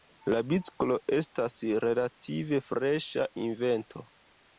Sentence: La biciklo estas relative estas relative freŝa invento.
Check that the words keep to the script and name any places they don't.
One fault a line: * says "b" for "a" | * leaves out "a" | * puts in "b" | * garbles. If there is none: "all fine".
* leaves out "estas relative"